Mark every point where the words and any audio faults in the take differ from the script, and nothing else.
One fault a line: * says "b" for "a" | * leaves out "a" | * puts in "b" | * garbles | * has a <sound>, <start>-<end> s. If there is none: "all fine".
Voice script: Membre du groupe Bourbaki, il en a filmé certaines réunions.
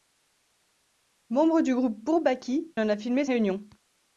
* leaves out "il"
* leaves out "certaines"